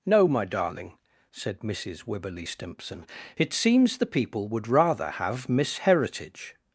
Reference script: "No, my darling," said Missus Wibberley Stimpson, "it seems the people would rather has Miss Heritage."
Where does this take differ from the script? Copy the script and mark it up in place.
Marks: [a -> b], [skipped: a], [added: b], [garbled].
"No, my darling," said Missus Wibberley Stimpson, "it seems the people would rather [has -> have] Miss Heritage."